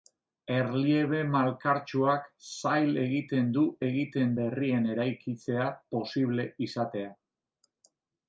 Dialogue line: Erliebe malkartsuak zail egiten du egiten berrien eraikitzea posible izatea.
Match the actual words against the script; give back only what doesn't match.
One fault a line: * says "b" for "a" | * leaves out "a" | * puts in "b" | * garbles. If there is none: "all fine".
all fine